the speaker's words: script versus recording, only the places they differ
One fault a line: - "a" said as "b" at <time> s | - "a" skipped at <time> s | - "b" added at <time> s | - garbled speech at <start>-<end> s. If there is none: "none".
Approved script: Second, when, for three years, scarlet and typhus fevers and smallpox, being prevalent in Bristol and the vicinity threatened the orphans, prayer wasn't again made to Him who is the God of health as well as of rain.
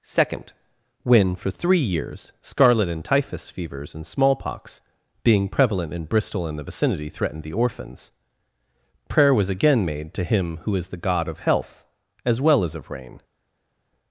- "wasn't" said as "was" at 9.3 s